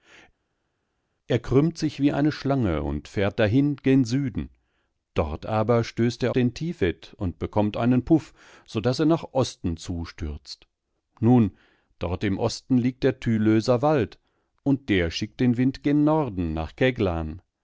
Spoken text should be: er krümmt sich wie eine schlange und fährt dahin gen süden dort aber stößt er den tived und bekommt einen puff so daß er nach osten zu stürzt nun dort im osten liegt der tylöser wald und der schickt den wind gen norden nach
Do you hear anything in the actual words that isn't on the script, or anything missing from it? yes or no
no